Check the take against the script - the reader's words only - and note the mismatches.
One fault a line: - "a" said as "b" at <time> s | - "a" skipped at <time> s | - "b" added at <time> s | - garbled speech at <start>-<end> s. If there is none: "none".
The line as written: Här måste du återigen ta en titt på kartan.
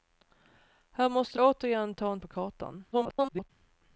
- "du" skipped at 1.4 s
- "titt" skipped at 2.2 s
- garbled speech at 2.9-3.5 s